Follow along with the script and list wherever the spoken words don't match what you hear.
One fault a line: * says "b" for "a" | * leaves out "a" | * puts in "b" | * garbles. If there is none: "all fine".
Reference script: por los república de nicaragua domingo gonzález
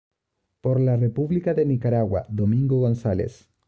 * says "la" for "los"